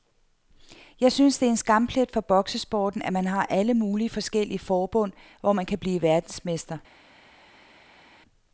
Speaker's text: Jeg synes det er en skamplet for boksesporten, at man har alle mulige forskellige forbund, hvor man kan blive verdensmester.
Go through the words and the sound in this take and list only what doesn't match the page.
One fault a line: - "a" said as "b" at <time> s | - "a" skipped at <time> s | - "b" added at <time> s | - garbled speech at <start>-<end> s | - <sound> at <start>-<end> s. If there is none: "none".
none